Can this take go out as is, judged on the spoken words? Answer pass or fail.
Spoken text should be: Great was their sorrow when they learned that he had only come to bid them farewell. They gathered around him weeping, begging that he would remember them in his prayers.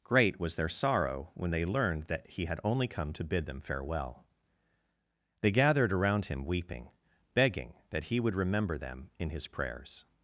pass